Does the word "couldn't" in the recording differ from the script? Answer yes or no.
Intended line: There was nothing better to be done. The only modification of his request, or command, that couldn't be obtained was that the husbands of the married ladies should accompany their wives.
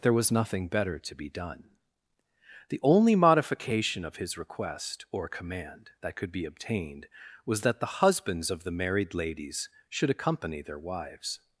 yes